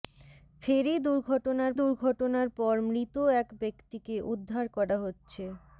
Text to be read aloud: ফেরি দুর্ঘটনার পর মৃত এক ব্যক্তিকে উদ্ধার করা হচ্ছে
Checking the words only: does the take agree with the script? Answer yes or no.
no